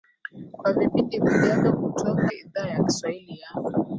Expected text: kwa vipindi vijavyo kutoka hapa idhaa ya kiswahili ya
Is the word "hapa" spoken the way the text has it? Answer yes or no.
no